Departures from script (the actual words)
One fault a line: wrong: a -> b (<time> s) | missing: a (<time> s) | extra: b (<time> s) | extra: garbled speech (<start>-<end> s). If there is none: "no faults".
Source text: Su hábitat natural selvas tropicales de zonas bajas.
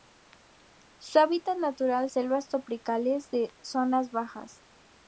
no faults